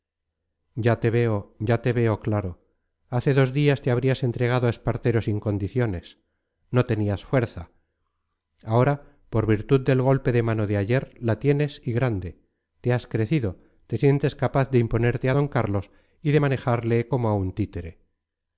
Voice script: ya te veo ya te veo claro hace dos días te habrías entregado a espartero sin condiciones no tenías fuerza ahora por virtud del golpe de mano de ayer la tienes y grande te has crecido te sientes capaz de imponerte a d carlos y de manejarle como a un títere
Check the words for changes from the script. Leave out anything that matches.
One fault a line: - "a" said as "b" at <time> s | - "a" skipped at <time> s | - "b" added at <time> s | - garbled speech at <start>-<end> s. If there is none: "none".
none